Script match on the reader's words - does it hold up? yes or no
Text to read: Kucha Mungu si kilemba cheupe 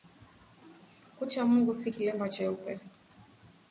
yes